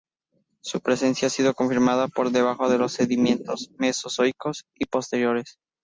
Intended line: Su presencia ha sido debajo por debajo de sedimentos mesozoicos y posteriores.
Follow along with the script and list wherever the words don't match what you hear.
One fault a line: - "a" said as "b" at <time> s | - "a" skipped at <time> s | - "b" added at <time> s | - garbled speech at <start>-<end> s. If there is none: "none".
- "debajo" said as "confirmada" at 1.5 s
- "los" added at 2.8 s